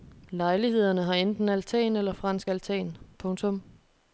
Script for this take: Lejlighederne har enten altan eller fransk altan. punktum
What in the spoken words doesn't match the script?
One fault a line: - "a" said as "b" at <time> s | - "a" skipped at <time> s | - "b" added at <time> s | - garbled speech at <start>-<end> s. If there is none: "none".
none